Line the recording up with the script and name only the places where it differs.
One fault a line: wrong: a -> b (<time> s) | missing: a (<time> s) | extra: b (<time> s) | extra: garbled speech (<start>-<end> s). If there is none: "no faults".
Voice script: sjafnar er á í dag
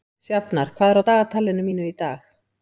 extra: hvað (0.8 s)
extra: dagatalinu mínu (1.1 s)